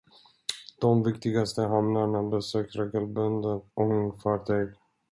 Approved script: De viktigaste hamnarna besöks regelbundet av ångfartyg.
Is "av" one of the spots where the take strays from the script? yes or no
yes